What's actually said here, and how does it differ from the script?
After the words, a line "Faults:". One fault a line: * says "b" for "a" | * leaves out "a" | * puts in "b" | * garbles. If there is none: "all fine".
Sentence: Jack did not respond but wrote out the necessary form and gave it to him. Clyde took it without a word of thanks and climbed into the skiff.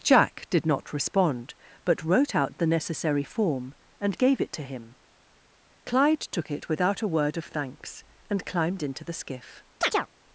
Jack did not respond but wrote out the necessary form and gave it to him. Clyde took it without a word of thanks and climbed into the skiff.
Faults:
all fine